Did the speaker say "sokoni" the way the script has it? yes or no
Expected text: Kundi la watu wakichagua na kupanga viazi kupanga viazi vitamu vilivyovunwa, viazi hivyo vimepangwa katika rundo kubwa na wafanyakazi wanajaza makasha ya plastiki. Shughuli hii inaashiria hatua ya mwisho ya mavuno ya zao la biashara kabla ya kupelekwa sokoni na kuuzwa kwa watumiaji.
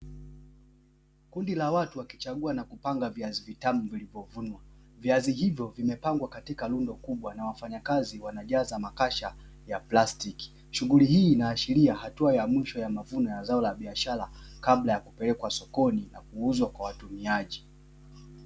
yes